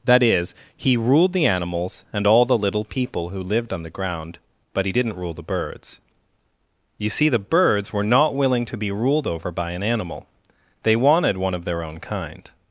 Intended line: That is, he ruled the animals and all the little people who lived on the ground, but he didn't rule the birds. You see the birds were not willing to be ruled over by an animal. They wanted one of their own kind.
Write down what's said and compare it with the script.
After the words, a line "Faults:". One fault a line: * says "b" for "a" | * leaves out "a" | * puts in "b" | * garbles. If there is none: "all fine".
That is, he ruled the animals and all the little people who lived on the ground, but he didn't rule the birds. You see the birds were not willing to be ruled over by an animal. They wanted one of their own kind.
Faults:
all fine